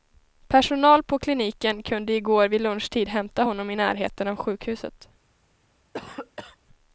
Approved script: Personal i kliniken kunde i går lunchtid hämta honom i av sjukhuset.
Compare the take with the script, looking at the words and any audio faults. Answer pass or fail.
fail